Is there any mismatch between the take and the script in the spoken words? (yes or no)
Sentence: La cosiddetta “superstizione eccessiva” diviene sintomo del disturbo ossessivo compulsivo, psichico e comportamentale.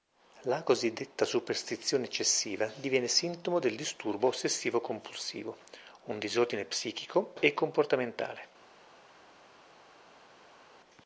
yes